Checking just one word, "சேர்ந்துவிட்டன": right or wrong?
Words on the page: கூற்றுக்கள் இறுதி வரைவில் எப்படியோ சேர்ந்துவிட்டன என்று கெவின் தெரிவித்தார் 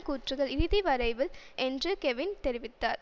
wrong